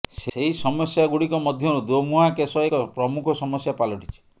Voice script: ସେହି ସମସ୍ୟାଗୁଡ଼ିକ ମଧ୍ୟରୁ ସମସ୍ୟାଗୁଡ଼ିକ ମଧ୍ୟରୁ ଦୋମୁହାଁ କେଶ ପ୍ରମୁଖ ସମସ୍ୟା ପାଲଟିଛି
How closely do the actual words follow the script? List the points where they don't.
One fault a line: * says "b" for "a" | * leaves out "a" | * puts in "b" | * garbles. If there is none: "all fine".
* leaves out "ସମସ୍ୟାଗୁଡ଼ିକ ମଧ୍ୟରୁ"
* puts in "ଏକ"